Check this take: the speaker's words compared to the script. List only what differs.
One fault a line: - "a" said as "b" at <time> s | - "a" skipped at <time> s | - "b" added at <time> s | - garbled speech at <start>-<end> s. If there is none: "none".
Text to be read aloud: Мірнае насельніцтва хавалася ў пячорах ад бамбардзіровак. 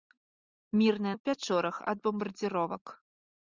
- "насельніцтва хавалася" skipped at 1.1 s